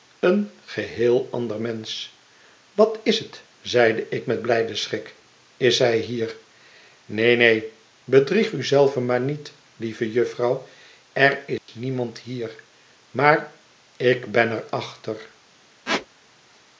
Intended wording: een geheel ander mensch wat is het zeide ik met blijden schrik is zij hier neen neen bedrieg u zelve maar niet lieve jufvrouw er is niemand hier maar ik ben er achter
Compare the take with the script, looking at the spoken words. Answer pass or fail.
pass